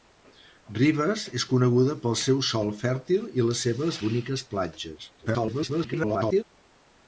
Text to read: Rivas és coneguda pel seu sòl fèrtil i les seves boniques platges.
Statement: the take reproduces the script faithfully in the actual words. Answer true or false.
false